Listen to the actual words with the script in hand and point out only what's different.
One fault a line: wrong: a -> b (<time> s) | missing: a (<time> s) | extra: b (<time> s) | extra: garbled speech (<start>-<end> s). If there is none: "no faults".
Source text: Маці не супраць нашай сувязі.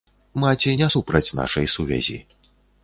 no faults